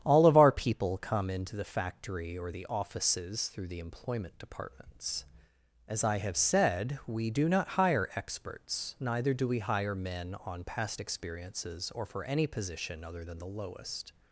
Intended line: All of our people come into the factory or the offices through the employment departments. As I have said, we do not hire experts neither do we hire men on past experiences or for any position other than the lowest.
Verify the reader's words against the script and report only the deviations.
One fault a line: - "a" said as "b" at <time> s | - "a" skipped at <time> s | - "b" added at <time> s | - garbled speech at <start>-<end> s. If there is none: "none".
none